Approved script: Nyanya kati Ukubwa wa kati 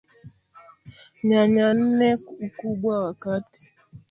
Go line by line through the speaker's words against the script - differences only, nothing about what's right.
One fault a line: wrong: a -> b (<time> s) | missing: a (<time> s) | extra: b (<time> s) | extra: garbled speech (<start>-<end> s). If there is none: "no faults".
wrong: kati -> nne (1.8 s)